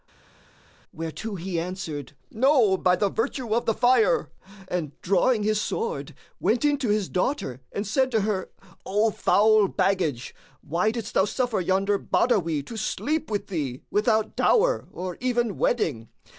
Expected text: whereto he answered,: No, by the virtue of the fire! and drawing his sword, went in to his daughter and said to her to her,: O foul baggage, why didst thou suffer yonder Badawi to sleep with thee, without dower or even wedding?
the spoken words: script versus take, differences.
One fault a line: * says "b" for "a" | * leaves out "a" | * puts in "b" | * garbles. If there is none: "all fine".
* leaves out "to her"